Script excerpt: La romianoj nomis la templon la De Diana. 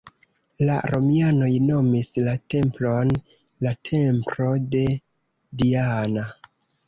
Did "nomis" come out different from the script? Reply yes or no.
no